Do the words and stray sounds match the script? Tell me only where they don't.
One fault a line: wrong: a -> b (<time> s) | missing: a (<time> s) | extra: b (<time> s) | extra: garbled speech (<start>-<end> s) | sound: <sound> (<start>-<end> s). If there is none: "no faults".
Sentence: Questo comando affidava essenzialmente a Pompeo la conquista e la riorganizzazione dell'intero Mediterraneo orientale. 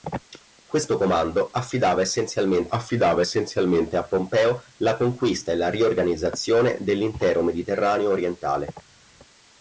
extra: affidava essenzialmente (2.7 s)